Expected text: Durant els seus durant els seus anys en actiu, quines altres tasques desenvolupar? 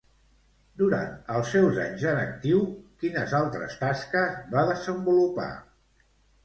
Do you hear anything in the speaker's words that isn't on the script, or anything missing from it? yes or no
yes